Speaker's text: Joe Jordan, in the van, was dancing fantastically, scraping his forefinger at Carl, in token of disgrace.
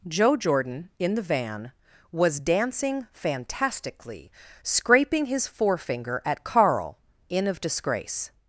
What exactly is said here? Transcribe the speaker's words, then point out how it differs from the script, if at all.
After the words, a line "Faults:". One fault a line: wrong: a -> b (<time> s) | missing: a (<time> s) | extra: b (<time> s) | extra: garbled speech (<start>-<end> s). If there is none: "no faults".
Joe Jordan, in the van, was dancing fantastically, scraping his forefinger at Carl, in of disgrace.
Faults:
missing: token (7.5 s)